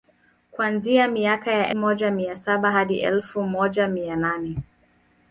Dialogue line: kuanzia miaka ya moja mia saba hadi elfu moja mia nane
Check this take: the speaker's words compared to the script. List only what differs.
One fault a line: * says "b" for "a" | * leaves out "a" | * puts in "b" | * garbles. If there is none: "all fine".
all fine